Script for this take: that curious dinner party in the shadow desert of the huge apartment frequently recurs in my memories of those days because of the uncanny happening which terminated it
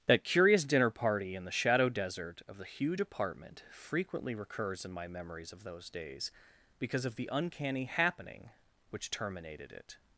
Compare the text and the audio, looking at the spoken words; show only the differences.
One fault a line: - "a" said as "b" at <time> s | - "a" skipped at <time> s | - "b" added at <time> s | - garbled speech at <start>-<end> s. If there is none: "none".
none